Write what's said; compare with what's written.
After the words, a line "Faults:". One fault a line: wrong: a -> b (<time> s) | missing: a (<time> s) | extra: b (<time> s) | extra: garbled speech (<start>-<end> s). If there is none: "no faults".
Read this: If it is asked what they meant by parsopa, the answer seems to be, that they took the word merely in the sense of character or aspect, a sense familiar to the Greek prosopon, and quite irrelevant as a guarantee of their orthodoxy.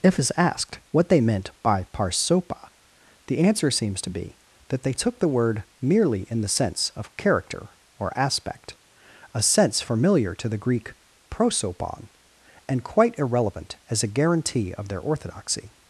If it is asked what they meant by parsopa, the answer seems to be, that they took the word merely in the sense of character or aspect, a sense familiar to the Greek prosopon, and quite irrelevant as a guarantee of their orthodoxy.
Faults:
no faults